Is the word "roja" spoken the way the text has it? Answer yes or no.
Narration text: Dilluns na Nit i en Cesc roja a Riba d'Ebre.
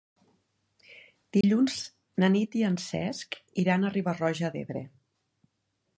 no